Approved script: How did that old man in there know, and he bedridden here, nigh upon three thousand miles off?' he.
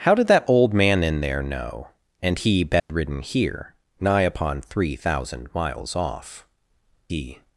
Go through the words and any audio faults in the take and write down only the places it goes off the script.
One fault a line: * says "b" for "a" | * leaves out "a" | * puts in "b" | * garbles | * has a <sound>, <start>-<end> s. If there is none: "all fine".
* has a dropout, 2.8-2.9 s